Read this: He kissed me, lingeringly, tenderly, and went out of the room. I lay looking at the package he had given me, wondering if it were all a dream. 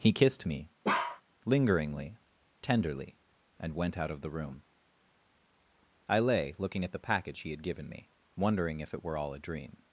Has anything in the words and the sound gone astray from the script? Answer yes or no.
yes